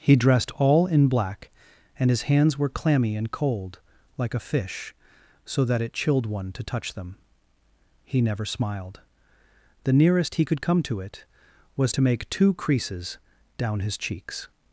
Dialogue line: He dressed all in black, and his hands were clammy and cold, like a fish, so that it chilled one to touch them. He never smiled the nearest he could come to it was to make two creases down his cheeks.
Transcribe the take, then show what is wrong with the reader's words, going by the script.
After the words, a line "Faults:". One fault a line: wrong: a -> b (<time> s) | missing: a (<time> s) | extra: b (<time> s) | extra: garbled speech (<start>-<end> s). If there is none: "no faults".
He dressed all in black, and his hands were clammy and cold, like a fish, so that it chilled one to touch them. He never smiled the nearest he could come to it was to make two creases down his cheeks.
Faults:
no faults